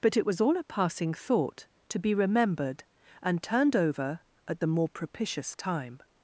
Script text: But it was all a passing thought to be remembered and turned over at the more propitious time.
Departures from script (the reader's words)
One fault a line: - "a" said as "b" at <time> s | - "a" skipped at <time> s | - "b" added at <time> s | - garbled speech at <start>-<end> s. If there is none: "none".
none